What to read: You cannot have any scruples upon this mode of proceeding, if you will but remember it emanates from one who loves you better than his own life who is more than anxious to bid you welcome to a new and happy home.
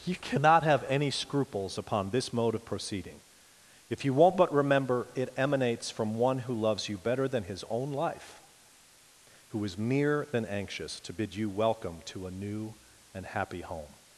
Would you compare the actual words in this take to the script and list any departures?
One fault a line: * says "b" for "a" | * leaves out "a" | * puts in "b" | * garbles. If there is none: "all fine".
* says "won't" for "will"
* says "mere" for "more"